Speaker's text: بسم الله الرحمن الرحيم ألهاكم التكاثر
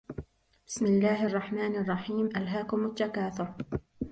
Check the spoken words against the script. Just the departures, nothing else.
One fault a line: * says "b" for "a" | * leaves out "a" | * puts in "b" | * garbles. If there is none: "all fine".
all fine